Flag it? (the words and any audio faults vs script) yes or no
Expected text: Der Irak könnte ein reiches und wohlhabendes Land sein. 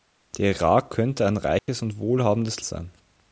yes